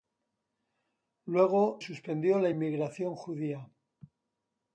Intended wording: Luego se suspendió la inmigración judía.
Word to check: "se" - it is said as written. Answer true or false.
false